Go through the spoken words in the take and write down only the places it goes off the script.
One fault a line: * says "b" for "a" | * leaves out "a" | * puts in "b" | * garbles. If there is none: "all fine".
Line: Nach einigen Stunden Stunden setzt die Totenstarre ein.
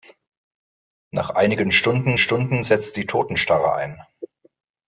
all fine